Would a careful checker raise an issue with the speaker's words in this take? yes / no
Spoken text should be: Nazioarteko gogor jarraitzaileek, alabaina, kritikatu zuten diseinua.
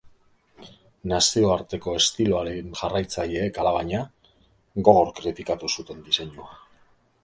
yes